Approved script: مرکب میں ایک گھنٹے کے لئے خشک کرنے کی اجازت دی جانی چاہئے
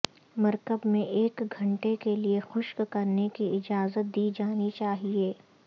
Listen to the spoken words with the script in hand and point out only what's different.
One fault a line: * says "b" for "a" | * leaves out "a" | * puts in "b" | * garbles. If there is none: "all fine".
all fine